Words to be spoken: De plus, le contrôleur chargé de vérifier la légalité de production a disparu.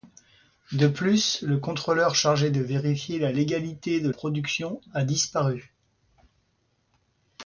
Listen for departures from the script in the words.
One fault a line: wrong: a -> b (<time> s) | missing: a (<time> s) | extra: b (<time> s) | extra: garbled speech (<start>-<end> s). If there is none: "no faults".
no faults